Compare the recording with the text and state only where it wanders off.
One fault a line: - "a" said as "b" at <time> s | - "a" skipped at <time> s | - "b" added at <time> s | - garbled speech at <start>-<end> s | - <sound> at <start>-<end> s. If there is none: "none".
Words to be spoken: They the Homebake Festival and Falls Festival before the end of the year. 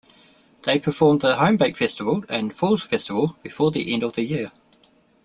- "performed" added at 0.8 s